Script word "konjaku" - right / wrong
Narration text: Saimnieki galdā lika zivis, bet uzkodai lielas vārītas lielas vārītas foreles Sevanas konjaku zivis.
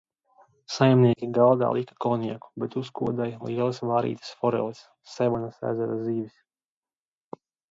wrong